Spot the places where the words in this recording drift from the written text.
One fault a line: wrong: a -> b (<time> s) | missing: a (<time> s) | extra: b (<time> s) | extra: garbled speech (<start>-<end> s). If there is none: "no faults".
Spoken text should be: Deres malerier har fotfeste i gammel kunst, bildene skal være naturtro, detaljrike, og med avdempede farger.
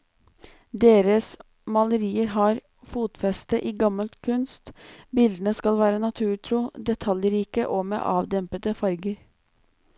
no faults